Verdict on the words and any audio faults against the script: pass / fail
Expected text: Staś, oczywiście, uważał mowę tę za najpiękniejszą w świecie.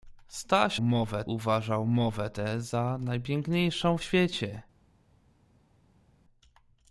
fail